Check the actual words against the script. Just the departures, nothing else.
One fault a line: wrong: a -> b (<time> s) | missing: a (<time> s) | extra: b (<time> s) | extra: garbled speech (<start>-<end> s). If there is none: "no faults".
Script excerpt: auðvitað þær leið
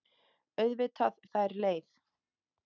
no faults